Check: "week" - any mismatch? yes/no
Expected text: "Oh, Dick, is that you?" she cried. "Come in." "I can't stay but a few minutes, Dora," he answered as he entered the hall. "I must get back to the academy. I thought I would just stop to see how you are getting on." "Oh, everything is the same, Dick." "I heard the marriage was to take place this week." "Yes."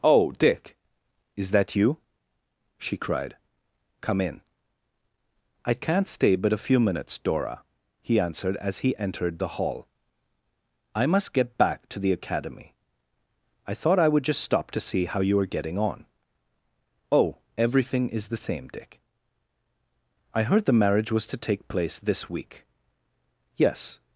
no